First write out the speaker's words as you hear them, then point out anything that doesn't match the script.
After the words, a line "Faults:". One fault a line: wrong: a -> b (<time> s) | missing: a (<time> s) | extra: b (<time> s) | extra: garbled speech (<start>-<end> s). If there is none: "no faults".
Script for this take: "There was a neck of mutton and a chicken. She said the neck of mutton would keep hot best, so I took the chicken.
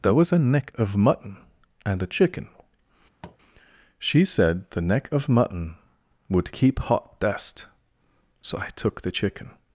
"There was a neck of mutton and a chicken. She said the neck of mutton would keep hot best, so I took the chicken.
Faults:
no faults